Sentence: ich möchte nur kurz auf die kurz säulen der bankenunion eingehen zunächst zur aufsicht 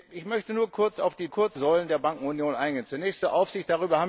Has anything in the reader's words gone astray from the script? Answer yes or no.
no